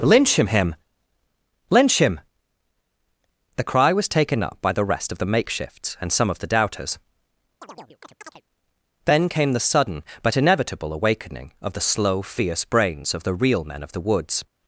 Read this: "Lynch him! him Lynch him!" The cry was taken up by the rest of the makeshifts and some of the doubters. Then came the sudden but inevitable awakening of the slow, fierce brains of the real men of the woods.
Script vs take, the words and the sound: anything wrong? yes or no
yes